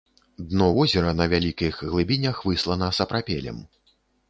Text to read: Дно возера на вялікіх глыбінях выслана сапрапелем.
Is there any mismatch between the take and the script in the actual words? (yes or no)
no